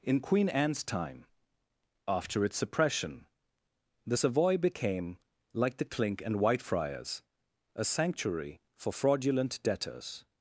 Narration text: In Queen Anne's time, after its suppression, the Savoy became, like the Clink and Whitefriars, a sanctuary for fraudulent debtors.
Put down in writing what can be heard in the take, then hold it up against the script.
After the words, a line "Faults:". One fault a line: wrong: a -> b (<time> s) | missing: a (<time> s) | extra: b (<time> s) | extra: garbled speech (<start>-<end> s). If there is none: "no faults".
In Queen Anne's time, after its suppression, the Savoy became, like the Clink and Whitefriars, a sanctuary for fraudulent debtors.
Faults:
no faults